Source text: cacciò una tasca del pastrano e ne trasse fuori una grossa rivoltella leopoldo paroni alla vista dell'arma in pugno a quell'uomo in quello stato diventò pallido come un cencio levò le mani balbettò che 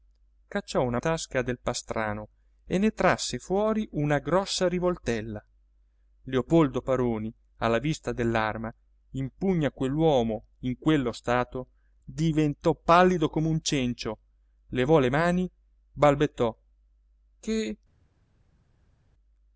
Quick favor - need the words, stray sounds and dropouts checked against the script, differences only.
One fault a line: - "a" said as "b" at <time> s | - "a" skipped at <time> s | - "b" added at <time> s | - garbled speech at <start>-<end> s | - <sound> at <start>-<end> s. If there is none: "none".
none